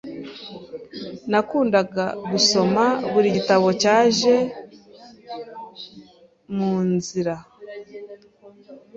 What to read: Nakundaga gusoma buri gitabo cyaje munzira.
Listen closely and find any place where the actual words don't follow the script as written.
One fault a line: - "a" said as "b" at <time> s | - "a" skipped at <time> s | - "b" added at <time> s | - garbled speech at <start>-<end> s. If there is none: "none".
none